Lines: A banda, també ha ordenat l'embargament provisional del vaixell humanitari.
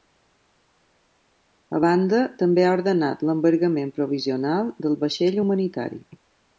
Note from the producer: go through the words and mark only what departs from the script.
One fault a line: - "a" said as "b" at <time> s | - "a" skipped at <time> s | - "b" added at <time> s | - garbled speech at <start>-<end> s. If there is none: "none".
none